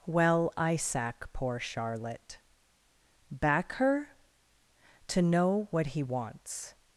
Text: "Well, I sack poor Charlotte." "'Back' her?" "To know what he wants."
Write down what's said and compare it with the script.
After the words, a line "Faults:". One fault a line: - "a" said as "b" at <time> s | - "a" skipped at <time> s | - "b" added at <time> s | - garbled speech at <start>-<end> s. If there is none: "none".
"Well, I sack poor Charlotte." "'Back' her?" "To know what he wants."
Faults:
none